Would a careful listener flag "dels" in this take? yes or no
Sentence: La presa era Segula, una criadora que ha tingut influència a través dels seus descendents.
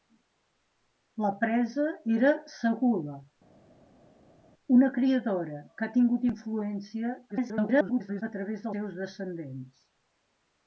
yes